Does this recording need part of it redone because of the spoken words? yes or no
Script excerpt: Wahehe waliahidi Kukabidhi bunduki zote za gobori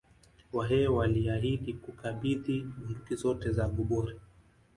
no